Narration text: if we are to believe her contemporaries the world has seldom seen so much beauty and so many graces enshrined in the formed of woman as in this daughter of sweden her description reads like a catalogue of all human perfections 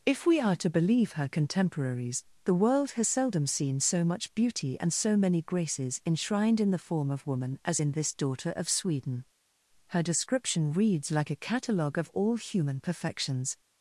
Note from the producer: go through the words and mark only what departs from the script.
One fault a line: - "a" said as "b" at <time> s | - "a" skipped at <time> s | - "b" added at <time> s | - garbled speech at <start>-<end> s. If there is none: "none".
- "formed" said as "form" at 6.8 s